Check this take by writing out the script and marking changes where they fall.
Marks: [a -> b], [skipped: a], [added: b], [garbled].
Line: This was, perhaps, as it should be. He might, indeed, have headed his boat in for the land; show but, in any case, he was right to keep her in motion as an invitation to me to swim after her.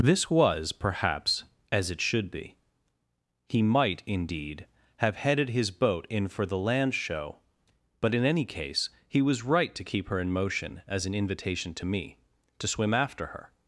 This was, perhaps, as it should be. He might, indeed, have headed his boat in for the land; show but, in any case, he was right to keep her in motion as an invitation to me to swim after her.